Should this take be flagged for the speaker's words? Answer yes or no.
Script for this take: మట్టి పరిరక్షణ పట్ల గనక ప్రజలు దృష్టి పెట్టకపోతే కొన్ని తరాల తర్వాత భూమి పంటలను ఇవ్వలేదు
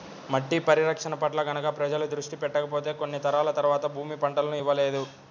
no